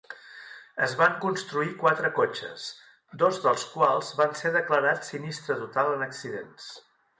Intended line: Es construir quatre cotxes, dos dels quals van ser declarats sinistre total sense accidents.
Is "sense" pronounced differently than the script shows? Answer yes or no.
yes